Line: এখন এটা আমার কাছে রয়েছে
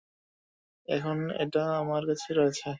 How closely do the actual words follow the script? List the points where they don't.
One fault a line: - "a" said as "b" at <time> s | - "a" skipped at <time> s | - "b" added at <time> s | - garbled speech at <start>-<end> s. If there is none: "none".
none